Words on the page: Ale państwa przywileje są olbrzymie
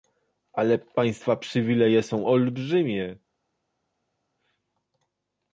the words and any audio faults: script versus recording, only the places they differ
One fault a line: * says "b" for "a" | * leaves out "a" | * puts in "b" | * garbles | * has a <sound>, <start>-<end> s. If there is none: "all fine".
all fine